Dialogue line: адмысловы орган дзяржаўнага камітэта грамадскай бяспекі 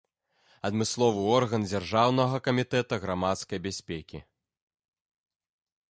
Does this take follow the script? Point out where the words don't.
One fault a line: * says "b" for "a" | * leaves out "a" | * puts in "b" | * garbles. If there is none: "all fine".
all fine